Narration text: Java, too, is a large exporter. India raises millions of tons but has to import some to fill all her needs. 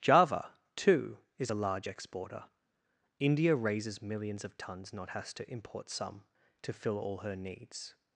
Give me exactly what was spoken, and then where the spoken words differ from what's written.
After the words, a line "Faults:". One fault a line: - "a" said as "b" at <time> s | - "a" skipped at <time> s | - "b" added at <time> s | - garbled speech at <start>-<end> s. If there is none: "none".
Java, too, is a large exporter. India raises millions of tons not has to import some to fill all her needs.
Faults:
- "but" said as "not" at 4.9 s